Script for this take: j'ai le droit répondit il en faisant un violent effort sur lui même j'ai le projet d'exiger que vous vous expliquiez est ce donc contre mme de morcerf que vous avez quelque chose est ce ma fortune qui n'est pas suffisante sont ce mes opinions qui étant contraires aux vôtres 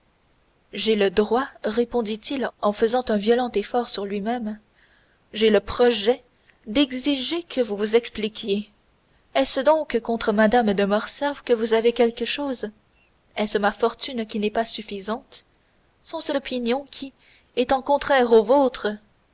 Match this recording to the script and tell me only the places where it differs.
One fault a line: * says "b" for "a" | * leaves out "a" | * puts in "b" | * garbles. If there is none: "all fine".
* leaves out "mes"